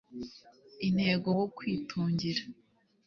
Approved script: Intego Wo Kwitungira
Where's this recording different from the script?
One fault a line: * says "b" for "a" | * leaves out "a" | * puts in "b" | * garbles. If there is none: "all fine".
all fine